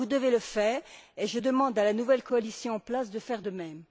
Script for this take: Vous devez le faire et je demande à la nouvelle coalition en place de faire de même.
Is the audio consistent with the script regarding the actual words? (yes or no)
yes